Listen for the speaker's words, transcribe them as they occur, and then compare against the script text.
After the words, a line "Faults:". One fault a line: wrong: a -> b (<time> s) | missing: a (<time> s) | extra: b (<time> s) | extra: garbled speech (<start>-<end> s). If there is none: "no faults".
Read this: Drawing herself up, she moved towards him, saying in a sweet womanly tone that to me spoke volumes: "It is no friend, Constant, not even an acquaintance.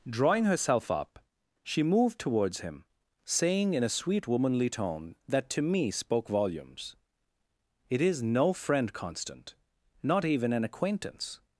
Drawing herself up, she moved towards him, saying in a sweet womanly tone that to me spoke volumes: "It is no friend, Constant, not even an acquaintance.
Faults:
no faults